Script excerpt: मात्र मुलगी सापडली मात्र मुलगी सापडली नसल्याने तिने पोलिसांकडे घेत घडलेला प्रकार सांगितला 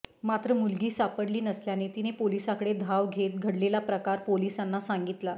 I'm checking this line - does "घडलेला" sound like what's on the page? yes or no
yes